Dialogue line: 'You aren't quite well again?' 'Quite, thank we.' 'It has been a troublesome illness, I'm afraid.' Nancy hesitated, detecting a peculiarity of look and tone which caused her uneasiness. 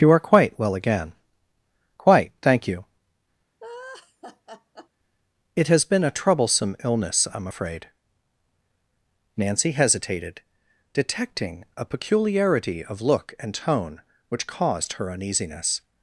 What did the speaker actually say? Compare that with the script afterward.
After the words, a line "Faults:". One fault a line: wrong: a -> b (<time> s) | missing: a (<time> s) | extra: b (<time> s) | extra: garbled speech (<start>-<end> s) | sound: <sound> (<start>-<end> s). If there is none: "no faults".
'You are quite well again?' 'Quite, thank you.' 'It has been a troublesome illness, I'm afraid.' Nancy hesitated, detecting a peculiarity of look and tone which caused her uneasiness.
Faults:
wrong: aren't -> are (0.1 s)
wrong: we -> you (2.7 s)
sound: laugh (3.6-4.9 s)